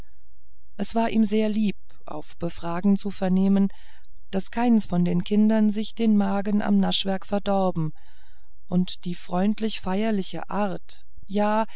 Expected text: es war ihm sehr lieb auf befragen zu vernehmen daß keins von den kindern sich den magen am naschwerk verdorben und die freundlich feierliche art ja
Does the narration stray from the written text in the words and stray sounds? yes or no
no